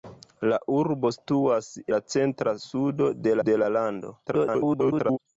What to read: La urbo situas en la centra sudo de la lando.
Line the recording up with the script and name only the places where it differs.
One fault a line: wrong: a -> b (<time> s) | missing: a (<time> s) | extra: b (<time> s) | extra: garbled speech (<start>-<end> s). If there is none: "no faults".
missing: en (1.7 s)
extra: de (3.5 s)
extra: garbled speech (4.3-5.2 s)